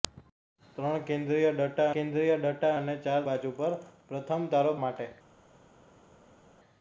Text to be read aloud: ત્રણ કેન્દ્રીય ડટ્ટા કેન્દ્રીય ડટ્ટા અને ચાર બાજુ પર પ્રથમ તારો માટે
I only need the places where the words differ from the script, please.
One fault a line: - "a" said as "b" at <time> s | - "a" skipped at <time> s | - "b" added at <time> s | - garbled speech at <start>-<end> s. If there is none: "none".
none